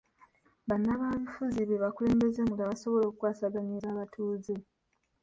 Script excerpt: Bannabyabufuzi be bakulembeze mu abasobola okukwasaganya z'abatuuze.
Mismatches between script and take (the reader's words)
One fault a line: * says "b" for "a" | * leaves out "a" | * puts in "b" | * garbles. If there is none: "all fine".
all fine